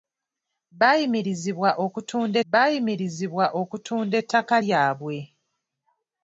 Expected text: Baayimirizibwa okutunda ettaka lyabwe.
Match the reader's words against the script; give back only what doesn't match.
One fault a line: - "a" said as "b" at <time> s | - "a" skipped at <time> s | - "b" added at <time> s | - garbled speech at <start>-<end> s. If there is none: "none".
- "baayimirizibwa okutunda" added at 2.5 s